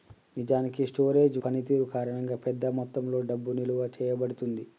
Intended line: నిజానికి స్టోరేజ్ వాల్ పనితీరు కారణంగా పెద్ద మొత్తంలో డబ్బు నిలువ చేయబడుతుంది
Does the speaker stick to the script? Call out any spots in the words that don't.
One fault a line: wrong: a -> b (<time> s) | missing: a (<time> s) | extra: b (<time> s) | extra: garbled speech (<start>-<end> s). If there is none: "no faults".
missing: వాల్ (1.4 s)